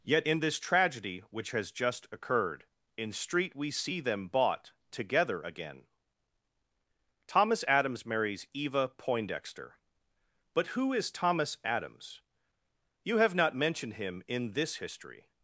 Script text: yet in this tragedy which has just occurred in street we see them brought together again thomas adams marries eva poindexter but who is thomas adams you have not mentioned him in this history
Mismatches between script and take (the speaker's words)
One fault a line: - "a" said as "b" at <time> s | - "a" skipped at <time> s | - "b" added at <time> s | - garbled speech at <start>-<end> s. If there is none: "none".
- "brought" said as "bought" at 4.3 s